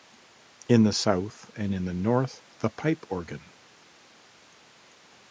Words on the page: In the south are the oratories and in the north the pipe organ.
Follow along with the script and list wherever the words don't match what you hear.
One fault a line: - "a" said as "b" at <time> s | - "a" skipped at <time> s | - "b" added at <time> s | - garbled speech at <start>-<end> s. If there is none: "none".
- "are the oratories" skipped at 1.5 s